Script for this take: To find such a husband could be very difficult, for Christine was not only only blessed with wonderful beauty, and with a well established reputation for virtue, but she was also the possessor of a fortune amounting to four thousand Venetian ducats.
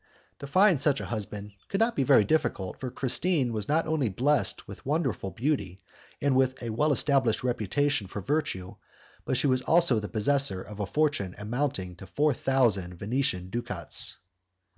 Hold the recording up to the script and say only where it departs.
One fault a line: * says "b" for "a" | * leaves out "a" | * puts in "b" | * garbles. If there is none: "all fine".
* puts in "not"
* leaves out "only"